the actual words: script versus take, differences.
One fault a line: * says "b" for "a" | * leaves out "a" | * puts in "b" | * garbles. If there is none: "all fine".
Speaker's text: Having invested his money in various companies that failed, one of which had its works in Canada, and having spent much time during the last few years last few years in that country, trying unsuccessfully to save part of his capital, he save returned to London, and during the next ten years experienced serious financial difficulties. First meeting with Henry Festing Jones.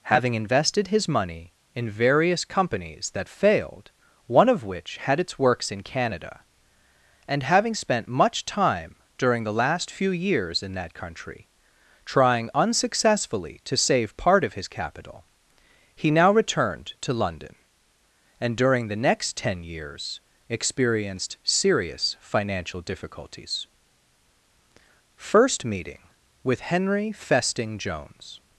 * leaves out "last few years"
* says "now" for "save"